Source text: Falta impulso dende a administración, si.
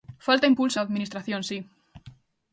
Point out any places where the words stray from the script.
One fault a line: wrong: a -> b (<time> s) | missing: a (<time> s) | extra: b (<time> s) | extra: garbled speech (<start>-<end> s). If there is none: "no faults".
missing: dende (0.8 s)